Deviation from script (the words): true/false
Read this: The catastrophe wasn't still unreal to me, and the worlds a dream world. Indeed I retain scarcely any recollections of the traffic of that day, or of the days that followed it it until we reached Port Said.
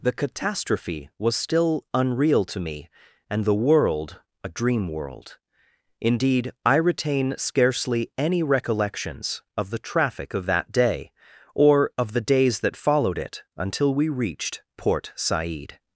true